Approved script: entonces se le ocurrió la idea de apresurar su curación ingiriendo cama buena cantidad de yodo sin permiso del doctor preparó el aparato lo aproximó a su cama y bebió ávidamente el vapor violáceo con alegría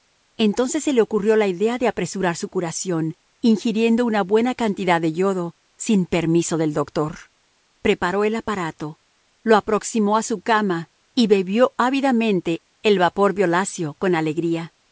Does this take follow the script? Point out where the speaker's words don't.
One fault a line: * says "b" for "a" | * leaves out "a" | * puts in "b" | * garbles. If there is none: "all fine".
* says "una" for "cama"